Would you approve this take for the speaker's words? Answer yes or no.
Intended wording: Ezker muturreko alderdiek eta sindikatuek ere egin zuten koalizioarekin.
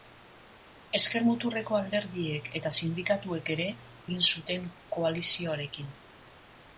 yes